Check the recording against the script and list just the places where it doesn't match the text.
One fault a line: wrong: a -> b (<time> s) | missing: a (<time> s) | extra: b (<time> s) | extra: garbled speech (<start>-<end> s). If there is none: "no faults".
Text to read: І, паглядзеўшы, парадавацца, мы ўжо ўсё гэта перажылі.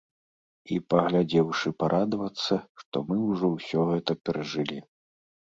extra: што (2.9 s)